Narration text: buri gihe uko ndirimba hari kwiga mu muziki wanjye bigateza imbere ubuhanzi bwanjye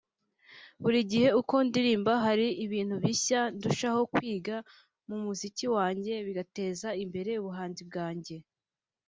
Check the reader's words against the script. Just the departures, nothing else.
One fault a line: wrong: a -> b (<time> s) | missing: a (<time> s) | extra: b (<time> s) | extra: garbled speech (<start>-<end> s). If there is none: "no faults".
extra: ibintu bishya ndushaho (2.7 s)